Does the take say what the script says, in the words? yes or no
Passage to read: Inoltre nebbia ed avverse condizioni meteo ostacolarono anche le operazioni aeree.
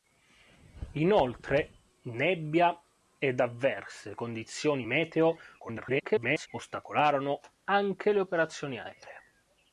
no